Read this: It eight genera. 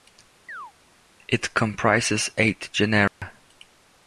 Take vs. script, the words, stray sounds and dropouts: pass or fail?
fail